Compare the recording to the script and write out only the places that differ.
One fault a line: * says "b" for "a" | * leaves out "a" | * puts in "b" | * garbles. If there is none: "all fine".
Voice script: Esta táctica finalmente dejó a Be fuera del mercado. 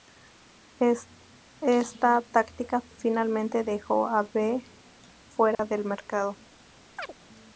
all fine